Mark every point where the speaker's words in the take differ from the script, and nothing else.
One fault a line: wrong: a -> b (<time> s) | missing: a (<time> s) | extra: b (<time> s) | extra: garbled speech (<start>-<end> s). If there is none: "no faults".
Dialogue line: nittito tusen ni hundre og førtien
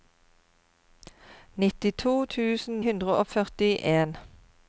missing: ni (2.8 s)